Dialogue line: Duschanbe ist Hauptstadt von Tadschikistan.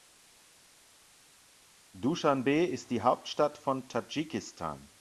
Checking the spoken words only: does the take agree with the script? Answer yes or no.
no